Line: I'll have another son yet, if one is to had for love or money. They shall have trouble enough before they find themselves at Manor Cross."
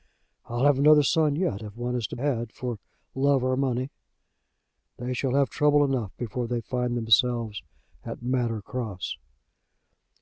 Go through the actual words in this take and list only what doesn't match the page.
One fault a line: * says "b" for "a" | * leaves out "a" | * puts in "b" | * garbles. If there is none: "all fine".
all fine